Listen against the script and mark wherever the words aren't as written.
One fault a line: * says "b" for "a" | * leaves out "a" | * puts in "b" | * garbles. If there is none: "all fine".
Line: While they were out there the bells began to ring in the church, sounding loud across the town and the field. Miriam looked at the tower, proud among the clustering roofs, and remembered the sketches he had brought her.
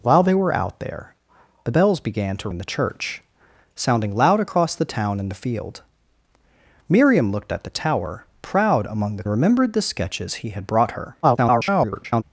* leaves out "ring"
* leaves out "clustering roofs and"
* garbles